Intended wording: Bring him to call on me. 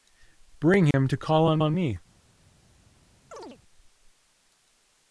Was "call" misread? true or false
false